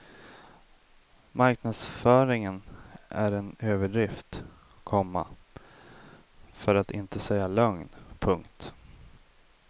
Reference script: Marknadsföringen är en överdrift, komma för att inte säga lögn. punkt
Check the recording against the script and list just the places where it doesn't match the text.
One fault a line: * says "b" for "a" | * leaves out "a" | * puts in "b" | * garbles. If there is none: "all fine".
all fine